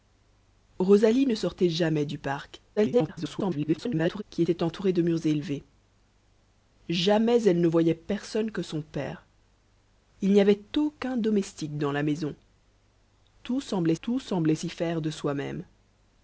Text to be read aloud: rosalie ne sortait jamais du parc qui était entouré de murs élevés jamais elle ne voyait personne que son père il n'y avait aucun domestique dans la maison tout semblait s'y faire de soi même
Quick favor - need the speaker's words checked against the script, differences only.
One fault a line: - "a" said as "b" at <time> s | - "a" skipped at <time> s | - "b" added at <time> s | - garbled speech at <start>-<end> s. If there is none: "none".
- garbled speech at 2.8-4.2 s
- "tout semblait" added at 14.0 s